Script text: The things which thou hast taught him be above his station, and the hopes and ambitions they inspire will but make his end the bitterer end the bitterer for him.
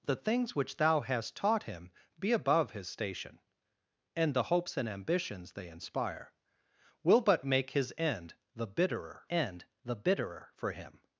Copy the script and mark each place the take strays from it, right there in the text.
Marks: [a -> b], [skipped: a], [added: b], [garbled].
The things which thou hast taught him be above his station, and the hopes and ambitions they inspire will but make his end the bitterer end the bitterer for him.